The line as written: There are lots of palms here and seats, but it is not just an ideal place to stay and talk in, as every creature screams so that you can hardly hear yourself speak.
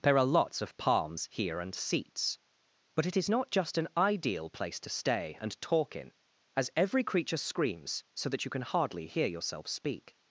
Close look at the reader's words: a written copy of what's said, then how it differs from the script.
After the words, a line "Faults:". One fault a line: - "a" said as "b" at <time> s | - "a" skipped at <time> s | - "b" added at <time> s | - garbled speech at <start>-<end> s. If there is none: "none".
There are lots of palms here and seats, but it is not just an ideal place to stay and talk in, as every creature screams so that you can hardly hear yourself speak.
Faults:
none